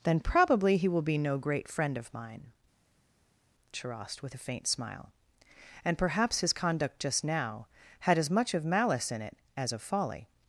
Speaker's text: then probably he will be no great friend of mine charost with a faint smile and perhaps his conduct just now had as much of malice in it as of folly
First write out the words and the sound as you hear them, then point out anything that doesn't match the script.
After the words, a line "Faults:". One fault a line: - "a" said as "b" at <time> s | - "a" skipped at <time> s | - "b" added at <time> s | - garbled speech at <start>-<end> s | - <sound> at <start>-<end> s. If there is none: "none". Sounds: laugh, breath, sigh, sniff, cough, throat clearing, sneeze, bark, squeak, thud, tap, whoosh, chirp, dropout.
then probably he will be no great friend of mine charost with a faint smile and perhaps his conduct just now had as much of malice in it as of folly
Faults:
none